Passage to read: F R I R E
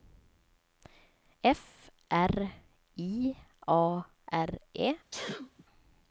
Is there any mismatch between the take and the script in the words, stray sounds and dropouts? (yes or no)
yes